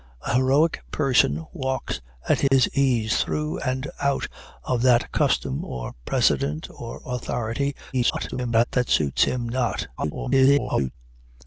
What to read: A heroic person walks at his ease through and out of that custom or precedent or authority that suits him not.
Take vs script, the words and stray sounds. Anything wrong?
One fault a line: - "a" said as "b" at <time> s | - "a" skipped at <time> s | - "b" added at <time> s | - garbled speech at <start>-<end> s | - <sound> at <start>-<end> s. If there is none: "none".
- dropout at 2.5-2.5 s
- garbled speech at 7.9-8.6 s
- garbled speech at 10.0-10.9 s